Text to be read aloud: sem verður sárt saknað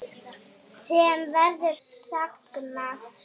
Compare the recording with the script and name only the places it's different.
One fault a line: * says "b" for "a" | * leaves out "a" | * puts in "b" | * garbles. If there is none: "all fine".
* leaves out "sárt"